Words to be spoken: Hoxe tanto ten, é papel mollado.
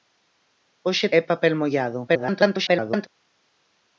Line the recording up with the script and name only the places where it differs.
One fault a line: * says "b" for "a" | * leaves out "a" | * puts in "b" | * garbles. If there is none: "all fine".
* leaves out "tanto ten"
* garbles